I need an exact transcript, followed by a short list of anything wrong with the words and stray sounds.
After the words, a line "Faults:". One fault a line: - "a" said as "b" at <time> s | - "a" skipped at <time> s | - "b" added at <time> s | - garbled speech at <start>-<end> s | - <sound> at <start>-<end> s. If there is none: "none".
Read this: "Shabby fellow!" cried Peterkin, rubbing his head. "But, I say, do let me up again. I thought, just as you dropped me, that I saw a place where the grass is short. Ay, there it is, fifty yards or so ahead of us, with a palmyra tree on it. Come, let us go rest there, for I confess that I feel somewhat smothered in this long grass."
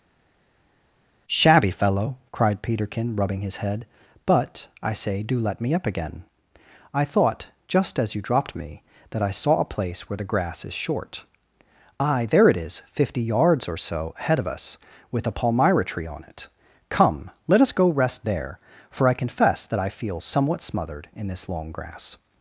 "Shabby fellow!" cried Peterkin, rubbing his head. "But, I say, do let me up again. I thought, just as you dropped me, that I saw a place where the grass is short. Ay, there it is, fifty yards or so ahead of us, with a palmyra tree on it. Come, let us go rest there, for I confess that I feel somewhat smothered in this long grass."
Faults:
none